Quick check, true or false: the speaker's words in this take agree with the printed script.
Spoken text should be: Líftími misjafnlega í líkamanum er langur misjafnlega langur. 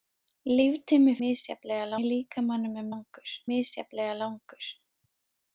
true